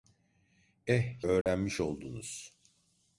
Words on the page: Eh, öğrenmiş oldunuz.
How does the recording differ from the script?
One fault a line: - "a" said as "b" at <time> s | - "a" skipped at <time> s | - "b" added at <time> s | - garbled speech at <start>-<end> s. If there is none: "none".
none